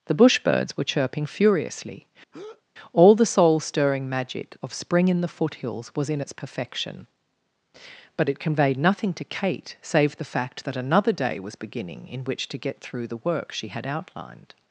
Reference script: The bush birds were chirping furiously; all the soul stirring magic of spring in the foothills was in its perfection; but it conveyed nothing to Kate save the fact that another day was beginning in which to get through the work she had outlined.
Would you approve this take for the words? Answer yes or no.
yes